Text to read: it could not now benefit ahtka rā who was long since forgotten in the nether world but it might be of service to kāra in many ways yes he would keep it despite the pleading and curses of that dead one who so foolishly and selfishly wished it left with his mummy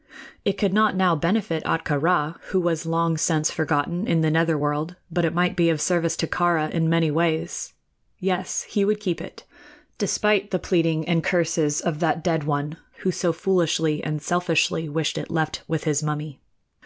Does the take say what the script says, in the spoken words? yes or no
yes